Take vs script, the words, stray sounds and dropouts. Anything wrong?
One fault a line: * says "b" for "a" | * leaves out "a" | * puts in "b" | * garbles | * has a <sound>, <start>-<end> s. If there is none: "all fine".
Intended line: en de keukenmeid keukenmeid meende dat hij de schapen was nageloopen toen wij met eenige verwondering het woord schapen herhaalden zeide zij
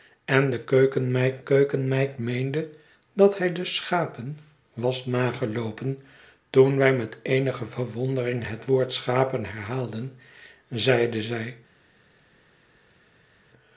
all fine